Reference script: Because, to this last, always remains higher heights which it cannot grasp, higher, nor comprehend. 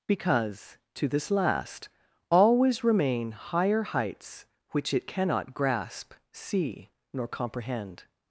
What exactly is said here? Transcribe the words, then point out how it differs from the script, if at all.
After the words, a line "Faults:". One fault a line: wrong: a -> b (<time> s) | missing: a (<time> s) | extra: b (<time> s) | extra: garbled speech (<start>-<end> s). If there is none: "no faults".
Because, to this last, always remain higher heights which it cannot grasp, see, nor comprehend.
Faults:
wrong: remains -> remain (2.8 s)
wrong: higher -> see (6.3 s)